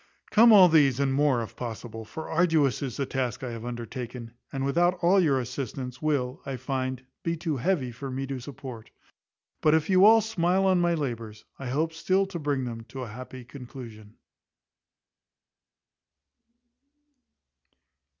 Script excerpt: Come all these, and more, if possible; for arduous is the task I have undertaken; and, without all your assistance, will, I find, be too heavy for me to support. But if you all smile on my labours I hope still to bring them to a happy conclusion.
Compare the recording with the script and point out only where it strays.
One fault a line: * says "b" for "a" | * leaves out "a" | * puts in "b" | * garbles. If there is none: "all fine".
all fine